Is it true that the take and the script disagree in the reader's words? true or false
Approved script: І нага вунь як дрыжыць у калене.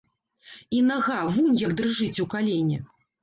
false